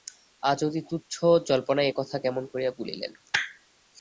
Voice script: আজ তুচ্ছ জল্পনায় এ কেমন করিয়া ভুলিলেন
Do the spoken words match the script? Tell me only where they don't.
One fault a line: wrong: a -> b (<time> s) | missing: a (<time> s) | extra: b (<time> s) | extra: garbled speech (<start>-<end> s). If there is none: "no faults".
extra: অতি (0.6 s)
extra: কথা (2.0 s)